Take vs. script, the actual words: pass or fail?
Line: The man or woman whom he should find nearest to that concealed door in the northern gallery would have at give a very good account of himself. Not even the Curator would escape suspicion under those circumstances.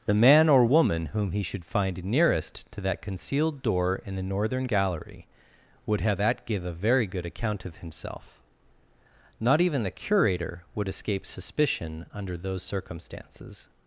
pass